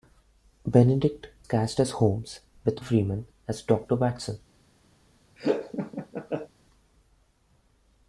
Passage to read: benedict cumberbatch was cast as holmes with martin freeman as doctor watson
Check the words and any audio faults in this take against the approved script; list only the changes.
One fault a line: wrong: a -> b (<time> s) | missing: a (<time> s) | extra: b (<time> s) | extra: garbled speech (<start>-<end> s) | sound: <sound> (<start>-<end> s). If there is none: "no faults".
missing: cumberbatch was (1.3 s)
missing: martin (2.8 s)
sound: laugh (5.4-6.5 s)